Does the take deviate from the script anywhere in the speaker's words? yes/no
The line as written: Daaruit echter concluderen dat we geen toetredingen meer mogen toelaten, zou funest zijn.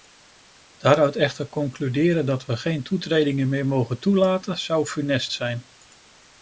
no